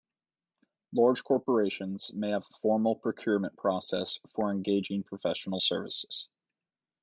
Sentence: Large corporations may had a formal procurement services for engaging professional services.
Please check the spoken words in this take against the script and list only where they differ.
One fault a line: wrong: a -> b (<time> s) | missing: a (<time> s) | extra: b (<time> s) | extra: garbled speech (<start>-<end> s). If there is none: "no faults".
wrong: had -> have (2.3 s)
wrong: services -> process (3.6 s)